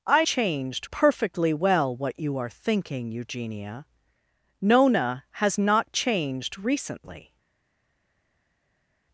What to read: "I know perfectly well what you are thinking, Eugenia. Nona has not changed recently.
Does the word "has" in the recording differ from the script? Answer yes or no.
no